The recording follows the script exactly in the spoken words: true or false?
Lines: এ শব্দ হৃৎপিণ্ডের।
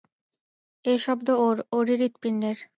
false